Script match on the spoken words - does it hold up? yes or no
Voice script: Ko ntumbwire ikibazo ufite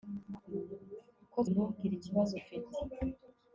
yes